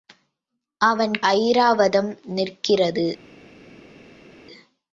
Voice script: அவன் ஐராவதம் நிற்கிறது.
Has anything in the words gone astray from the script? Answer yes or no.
no